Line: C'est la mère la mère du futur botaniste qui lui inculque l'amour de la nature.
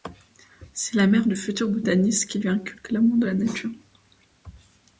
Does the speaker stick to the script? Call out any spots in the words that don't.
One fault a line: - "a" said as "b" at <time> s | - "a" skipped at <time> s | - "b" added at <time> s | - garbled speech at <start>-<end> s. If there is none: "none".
- "la mère" skipped at 1.3 s